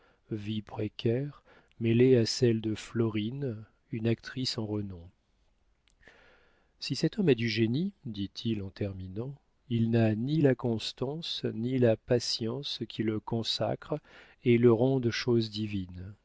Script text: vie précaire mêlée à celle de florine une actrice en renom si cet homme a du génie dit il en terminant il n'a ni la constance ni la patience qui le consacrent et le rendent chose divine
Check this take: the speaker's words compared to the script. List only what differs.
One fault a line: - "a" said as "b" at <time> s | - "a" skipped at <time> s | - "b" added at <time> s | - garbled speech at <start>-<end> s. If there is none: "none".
none